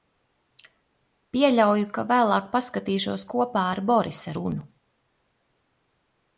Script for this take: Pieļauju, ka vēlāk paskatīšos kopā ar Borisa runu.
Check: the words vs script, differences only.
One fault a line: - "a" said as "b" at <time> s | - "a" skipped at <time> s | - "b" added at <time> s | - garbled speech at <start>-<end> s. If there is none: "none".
none